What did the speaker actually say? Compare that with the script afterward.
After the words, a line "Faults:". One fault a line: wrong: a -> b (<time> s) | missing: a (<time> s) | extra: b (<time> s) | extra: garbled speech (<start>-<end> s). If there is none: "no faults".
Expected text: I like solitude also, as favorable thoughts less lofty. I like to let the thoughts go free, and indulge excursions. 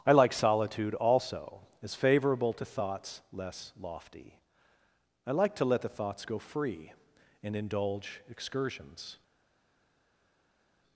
I like solitude also, as favorable to thoughts less lofty. I like to let the thoughts go free, and indulge excursions.
Faults:
extra: to (2.5 s)